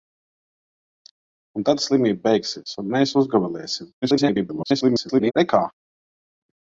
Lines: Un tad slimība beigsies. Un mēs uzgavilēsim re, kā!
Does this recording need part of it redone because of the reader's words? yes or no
yes